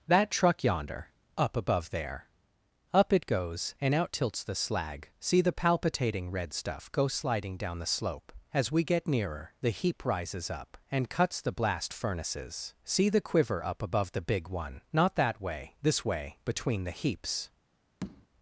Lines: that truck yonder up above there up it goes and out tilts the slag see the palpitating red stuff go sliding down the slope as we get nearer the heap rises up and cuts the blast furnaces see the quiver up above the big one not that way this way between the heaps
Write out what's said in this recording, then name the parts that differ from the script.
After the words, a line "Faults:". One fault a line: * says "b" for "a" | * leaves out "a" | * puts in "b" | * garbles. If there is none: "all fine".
that truck yonder up above there up it goes and out tilts the slag see the palpitating red stuff go sliding down the slope as we get nearer the heap rises up and cuts the blast furnaces see the quiver up above the big one not that way this way between the heaps
Faults:
all fine